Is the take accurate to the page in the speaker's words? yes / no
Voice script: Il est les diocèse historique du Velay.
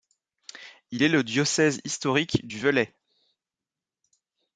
no